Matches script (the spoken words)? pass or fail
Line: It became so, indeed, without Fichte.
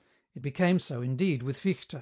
fail